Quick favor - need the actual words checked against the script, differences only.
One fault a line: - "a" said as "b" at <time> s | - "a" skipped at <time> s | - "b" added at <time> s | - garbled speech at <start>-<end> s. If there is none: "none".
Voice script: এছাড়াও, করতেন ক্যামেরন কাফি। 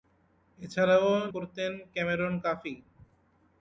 none